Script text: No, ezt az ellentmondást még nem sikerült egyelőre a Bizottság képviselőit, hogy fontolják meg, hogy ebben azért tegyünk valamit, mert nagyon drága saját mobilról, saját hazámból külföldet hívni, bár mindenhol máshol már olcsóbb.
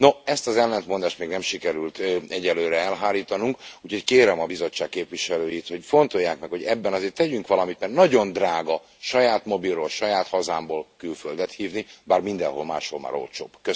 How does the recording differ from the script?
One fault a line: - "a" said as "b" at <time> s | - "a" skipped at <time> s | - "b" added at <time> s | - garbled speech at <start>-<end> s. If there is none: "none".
- "elhárítanunk úgyhogy kérem" added at 2.8 s